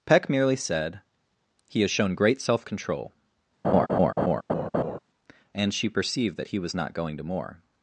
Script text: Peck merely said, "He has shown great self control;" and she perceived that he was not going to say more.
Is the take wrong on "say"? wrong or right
wrong